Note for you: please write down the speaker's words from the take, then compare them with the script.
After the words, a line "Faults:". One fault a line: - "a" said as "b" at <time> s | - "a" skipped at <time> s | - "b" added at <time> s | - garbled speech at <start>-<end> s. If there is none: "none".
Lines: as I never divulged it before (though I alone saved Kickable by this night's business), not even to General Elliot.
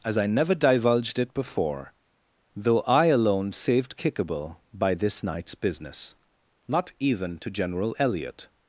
as I never divulged it before (though I alone saved Kickable by this night's business), not even to General Elliot.
Faults:
none